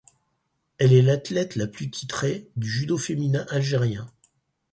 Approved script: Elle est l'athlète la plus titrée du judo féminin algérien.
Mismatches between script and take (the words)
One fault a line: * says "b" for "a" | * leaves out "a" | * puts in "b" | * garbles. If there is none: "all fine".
all fine